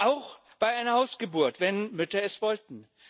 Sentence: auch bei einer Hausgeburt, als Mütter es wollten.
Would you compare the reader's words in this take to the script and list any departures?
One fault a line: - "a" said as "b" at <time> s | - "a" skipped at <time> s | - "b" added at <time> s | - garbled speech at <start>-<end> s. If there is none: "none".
- "als" said as "wenn" at 1.6 s